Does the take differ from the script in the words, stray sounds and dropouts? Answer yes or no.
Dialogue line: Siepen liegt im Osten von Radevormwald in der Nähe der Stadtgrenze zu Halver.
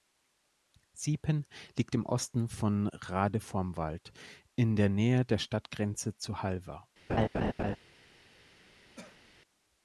yes